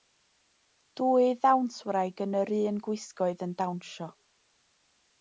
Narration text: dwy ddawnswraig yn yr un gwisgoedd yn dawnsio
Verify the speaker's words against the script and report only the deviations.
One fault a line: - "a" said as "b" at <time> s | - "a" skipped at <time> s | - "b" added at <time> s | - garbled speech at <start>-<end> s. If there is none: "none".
none